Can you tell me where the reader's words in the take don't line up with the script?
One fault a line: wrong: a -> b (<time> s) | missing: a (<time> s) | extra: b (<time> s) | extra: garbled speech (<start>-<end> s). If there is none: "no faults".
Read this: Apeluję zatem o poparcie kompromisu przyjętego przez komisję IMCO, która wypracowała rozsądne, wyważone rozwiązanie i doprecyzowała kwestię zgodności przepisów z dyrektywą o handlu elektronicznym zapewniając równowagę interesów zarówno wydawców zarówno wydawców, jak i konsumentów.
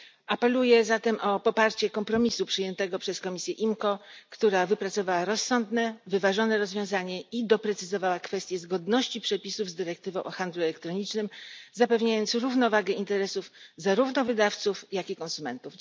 missing: zarówno wydawców (14.8 s)